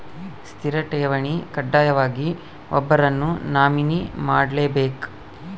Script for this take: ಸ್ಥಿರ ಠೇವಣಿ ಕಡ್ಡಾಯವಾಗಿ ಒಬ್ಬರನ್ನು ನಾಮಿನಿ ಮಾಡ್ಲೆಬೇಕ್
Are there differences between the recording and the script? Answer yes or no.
no